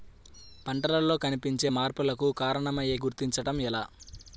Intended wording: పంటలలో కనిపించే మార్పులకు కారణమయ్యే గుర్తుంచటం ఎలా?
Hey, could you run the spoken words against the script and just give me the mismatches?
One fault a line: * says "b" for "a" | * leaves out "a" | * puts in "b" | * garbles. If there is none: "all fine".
all fine